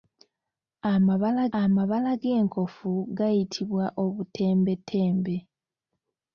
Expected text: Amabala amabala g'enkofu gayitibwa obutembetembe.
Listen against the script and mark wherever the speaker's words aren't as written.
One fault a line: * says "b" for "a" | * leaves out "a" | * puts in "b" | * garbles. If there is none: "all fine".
all fine